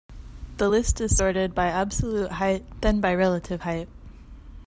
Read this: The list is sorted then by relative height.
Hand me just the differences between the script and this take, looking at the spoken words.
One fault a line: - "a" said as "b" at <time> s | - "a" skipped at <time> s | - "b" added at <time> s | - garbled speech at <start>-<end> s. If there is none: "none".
- "by absolute height" added at 1.5 s